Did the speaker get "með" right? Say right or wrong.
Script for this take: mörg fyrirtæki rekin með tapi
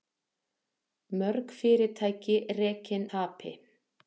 wrong